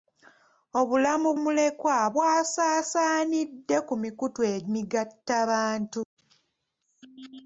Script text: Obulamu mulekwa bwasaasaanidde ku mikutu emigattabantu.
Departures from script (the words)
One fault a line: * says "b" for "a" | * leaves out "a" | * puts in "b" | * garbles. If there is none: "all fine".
all fine